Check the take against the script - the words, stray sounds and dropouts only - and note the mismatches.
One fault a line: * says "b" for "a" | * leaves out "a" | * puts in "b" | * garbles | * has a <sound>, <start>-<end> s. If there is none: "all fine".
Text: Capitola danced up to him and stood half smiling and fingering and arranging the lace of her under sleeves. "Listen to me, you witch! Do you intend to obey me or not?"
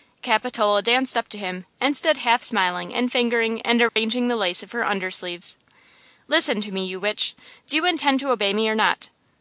* has a dropout, 3.9-4.0 s